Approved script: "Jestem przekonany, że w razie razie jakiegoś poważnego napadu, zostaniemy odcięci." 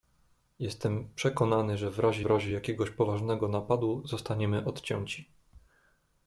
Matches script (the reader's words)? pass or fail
pass